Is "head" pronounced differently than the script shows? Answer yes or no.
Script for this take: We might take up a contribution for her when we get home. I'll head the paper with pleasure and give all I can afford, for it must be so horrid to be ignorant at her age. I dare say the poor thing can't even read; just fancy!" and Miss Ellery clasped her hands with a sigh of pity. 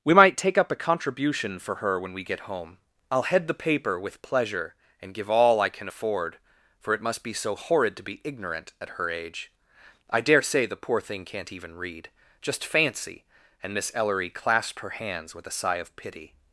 no